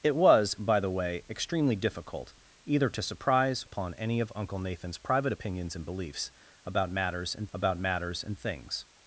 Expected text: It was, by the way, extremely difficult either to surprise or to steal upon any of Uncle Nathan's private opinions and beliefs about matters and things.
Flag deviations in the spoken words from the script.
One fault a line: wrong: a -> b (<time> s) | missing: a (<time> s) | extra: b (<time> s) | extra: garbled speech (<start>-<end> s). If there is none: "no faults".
missing: or to steal (3.6 s)
extra: about matters and (7.5 s)